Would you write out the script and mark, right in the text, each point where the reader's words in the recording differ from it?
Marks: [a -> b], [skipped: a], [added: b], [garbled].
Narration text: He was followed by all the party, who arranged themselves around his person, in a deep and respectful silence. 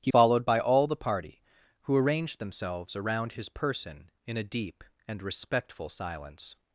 He [skipped: was] followed by all the party, who arranged themselves around his person, in a deep and respectful silence.